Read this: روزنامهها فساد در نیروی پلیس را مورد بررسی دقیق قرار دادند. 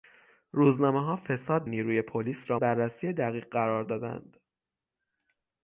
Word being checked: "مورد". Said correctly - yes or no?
no